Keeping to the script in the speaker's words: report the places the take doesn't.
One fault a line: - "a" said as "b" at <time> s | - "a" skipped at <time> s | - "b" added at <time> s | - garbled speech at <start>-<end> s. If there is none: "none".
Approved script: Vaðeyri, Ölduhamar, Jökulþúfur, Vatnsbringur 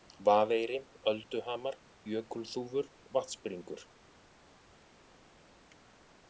none